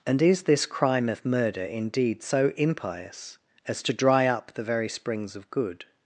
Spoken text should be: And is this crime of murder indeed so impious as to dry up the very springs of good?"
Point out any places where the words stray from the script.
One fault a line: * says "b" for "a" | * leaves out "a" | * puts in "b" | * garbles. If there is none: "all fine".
all fine